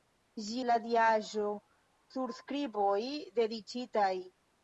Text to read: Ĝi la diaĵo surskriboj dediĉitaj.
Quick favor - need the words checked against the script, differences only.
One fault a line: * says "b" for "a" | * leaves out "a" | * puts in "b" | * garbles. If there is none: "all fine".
all fine